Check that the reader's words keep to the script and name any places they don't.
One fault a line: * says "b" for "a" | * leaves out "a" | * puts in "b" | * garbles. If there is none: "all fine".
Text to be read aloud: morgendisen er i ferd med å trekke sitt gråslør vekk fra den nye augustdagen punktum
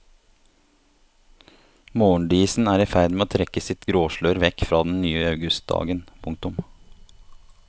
all fine